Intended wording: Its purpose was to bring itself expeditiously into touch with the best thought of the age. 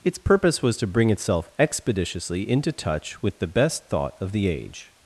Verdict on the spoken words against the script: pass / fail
pass